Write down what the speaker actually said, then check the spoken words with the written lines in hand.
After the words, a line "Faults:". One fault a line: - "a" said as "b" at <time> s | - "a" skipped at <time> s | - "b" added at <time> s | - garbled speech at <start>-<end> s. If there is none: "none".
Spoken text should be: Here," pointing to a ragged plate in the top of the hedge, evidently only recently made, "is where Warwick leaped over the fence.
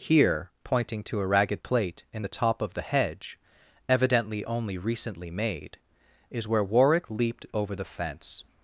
Here," pointing to a ragged plate in the top of the hedge, evidently only recently made, "is where Warwick leaped over the fence.
Faults:
none